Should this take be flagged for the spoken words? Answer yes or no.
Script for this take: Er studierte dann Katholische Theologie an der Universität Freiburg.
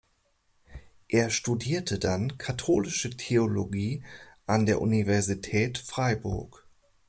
no